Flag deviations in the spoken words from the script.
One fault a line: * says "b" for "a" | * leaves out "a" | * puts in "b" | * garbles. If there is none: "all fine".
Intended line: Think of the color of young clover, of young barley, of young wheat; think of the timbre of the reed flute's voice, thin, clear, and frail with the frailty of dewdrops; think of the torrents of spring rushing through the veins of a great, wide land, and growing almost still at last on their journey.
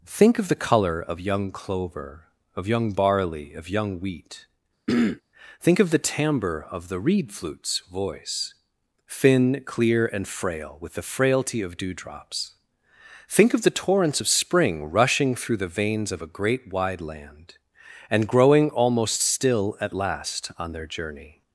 all fine